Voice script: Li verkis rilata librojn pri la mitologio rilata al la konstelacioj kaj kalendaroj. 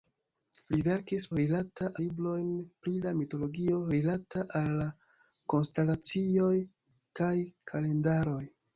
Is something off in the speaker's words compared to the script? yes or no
no